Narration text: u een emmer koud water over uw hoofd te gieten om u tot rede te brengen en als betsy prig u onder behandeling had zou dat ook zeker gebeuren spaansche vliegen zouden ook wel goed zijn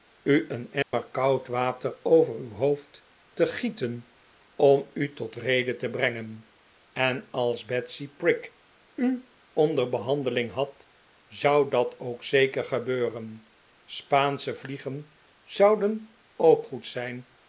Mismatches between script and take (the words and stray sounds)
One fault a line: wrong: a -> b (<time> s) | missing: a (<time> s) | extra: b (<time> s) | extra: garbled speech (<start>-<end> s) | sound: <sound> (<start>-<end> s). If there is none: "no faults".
sound: dropout (0.8-0.9 s)
missing: wel (16.6 s)